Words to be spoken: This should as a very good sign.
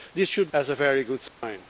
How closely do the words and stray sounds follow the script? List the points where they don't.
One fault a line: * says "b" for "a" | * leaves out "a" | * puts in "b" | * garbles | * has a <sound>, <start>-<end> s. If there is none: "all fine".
* has a dropout, 1.3-1.4 s